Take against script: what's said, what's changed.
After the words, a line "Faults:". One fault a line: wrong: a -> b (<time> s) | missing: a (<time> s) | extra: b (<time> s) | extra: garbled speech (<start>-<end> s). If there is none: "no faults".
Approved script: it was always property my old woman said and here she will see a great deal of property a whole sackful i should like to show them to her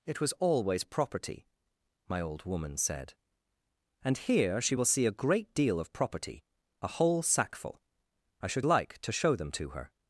it was always property my old woman said and here she will see a great deal of property a whole sackful i should like to show them to her
Faults:
no faults